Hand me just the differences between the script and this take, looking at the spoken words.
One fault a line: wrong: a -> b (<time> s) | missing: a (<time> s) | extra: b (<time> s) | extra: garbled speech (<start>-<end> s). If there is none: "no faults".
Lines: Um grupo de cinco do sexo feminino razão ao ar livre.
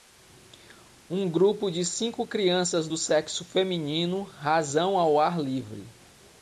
extra: crianças (2.2 s)